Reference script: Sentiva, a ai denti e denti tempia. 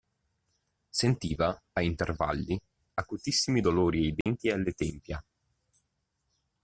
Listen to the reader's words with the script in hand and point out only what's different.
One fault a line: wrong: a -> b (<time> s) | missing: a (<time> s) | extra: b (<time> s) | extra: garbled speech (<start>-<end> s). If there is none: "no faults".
extra: intervalli acutissimi dolori (1.8 s)
wrong: denti -> alle (4.5 s)